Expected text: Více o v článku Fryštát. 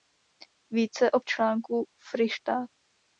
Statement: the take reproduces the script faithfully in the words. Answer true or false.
true